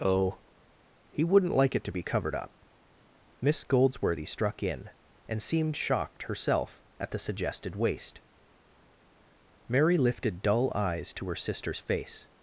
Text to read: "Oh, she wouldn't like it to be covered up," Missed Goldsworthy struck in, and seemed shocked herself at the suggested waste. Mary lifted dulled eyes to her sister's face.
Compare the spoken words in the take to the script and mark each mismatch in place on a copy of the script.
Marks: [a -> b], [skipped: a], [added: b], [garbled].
"Oh, [she -> he] wouldn't like it to be covered up," [Missed -> Miss] Goldsworthy struck in, and seemed shocked herself at the suggested waste. Mary lifted [dulled -> dull] eyes to her sister's face.